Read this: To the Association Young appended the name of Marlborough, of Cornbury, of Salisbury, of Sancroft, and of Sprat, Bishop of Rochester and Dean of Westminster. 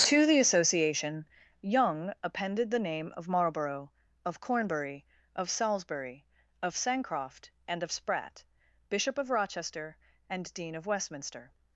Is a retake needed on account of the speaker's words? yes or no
no